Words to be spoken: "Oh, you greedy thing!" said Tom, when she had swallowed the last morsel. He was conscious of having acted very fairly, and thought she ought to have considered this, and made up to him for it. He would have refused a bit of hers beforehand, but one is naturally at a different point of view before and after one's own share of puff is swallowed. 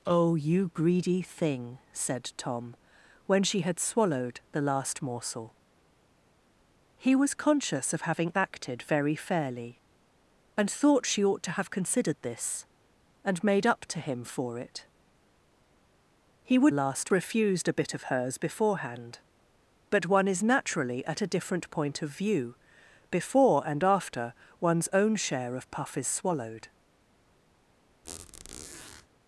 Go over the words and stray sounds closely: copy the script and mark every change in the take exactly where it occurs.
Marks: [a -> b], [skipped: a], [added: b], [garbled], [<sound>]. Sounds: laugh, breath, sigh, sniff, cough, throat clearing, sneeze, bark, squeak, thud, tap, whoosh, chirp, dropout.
"Oh, you greedy thing!" said Tom, when she had swallowed the last morsel. He was conscious of having acted very fairly, and thought she ought to have considered this, and made up to him for it. He would [have -> last] refused a bit of hers beforehand, but one is naturally at a different point of view before and after one's own share of puff is swallowed. [squeak]